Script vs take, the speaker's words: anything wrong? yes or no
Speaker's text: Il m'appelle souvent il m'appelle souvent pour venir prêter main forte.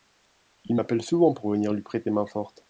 yes